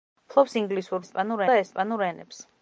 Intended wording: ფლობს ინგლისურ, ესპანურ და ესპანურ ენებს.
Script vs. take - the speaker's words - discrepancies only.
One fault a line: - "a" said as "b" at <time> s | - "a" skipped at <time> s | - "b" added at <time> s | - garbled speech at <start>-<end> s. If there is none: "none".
none